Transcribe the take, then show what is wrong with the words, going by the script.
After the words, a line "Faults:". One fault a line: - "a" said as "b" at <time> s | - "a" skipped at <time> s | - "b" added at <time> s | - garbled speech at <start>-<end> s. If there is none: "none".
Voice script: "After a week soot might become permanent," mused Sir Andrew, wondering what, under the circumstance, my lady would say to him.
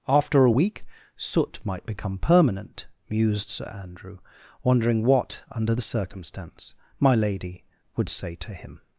"After a week soot might become permanent," mused Sir Andrew, wondering what, under the circumstance, my lady would say to him.
Faults:
none